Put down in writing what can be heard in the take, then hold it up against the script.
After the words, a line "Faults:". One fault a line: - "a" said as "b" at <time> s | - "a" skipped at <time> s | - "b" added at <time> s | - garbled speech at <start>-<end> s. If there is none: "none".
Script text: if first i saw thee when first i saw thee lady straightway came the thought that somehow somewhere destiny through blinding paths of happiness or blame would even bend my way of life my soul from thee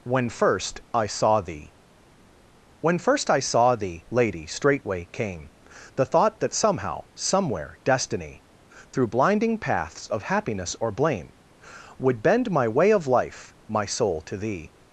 when first i saw thee when first i saw thee lady straightway came the thought that somehow somewhere destiny through blinding paths of happiness or blame would bend my way of life my soul to thee
Faults:
- "if" said as "when" at 0.0 s
- "even" skipped at 12.2 s
- "from" said as "to" at 14.2 s